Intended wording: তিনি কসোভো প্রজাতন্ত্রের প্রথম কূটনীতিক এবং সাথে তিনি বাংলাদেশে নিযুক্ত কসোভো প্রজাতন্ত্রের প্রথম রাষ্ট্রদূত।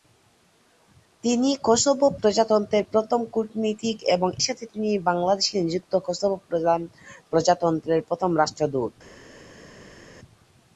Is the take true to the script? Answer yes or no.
yes